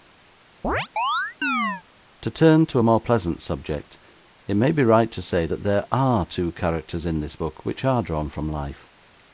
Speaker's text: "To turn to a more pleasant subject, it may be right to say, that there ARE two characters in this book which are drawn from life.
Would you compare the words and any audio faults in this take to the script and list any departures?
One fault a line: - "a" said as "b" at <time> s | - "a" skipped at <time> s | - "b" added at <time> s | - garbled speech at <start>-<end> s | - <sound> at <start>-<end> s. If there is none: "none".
- chirp at 0.6-1.8 s